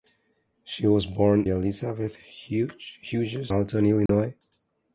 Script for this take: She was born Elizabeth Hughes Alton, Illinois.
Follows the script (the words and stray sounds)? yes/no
no